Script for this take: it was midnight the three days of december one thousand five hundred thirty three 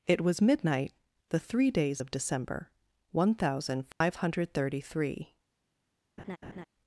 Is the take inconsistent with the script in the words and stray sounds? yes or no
yes